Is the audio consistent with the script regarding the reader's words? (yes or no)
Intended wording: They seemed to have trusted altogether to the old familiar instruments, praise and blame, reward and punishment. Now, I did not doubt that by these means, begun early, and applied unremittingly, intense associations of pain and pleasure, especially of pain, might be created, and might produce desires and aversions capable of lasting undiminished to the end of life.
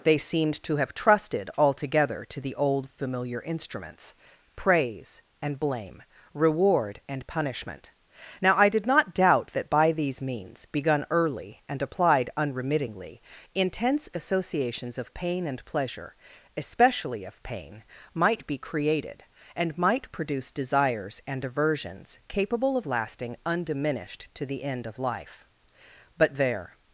no